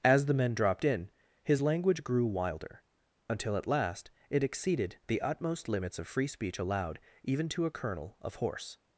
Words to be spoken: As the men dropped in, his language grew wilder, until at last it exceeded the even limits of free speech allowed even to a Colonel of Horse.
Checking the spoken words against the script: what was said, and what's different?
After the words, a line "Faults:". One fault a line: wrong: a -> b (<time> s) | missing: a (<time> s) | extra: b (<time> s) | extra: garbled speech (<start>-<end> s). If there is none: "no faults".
As the men dropped in, his language grew wilder, until at last it exceeded the utmost limits of free speech allowed even to a Colonel of Horse.
Faults:
wrong: even -> utmost (5.2 s)